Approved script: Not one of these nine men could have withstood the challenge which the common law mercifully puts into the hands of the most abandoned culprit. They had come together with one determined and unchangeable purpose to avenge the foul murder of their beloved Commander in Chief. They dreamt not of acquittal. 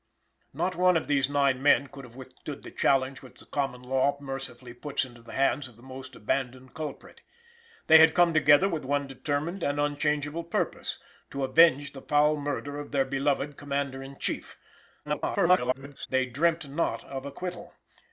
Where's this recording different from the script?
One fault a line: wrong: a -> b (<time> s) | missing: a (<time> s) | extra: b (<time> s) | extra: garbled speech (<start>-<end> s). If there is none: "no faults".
extra: garbled speech (15.0-16.1 s)